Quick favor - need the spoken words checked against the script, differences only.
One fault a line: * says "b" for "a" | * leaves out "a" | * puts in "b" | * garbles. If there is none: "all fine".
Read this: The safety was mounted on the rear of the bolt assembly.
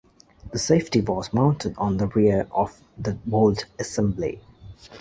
all fine